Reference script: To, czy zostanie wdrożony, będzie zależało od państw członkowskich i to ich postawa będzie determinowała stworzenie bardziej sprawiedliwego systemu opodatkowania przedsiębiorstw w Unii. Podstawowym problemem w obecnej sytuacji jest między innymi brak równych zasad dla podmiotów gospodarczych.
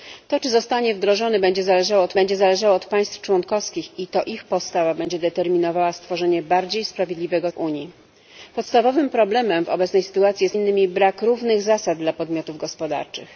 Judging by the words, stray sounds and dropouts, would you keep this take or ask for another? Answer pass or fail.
fail